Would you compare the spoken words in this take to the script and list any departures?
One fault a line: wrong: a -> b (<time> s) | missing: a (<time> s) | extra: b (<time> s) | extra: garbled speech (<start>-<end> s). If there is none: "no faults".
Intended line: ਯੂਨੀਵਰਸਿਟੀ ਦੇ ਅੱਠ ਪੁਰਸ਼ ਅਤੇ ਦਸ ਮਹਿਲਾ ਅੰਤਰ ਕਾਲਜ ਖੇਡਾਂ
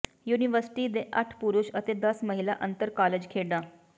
no faults